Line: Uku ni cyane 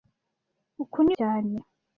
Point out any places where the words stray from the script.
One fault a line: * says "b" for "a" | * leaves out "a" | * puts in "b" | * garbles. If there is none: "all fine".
all fine